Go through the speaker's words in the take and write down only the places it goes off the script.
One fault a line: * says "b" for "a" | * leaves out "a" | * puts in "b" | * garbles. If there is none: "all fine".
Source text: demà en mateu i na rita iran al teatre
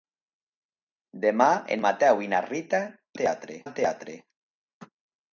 * says "teatre" for "iran"